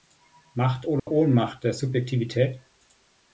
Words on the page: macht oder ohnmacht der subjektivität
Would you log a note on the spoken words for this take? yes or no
no